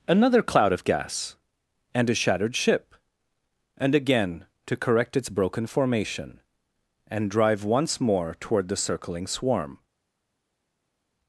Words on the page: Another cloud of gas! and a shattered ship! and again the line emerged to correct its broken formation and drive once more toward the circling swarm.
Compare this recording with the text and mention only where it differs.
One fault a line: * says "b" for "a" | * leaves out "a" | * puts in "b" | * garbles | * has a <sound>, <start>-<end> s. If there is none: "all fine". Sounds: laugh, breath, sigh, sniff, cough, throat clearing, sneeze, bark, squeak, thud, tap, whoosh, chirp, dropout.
* leaves out "the line emerged"